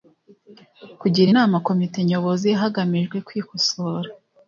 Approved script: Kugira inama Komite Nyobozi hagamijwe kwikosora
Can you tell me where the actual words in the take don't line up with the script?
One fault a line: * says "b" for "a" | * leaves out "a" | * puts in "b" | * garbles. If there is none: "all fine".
all fine